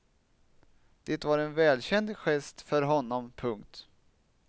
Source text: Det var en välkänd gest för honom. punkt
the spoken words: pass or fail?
pass